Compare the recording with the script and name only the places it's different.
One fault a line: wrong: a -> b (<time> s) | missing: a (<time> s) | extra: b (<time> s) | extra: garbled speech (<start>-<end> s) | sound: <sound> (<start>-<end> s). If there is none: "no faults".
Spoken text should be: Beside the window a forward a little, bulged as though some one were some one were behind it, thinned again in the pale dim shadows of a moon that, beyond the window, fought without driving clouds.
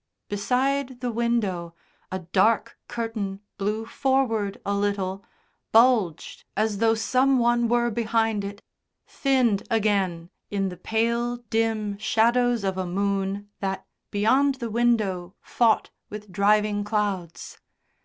extra: dark curtain blew (2.2 s)
missing: some one were (7.9 s)
wrong: without -> with (16.1 s)